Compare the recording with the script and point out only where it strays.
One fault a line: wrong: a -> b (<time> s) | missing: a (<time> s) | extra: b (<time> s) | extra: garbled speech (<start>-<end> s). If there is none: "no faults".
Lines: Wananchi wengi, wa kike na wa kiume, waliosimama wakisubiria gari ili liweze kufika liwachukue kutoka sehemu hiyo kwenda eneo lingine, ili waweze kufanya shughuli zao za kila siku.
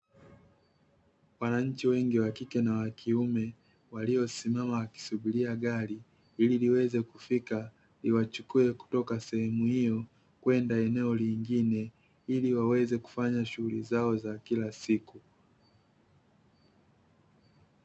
no faults